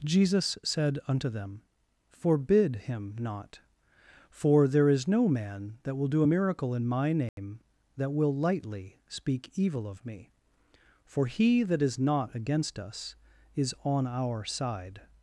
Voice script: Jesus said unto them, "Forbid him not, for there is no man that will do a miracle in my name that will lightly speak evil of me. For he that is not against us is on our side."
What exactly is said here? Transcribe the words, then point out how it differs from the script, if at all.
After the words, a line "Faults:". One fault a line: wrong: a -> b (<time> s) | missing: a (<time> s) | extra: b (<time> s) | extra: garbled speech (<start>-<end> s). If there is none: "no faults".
Jesus said unto them, "Forbid him not, for there is no man that will do a miracle in my name that will lightly speak evil of me. For he that is not against us is on our side."
Faults:
no faults